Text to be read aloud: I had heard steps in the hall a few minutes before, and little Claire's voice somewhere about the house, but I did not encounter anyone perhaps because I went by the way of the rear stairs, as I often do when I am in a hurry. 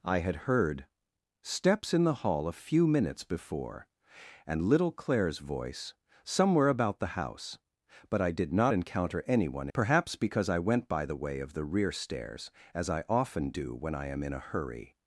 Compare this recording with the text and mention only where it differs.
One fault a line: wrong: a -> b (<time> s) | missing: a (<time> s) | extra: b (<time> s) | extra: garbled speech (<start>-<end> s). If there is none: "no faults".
no faults